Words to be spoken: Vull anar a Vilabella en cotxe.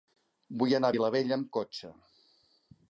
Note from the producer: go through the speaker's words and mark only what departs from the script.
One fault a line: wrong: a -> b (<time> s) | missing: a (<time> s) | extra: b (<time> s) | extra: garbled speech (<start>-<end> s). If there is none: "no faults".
wrong: en -> amb (1.4 s)